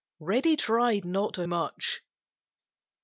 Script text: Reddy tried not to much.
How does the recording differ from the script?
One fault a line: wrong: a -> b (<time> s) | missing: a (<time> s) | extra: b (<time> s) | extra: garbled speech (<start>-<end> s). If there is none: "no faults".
no faults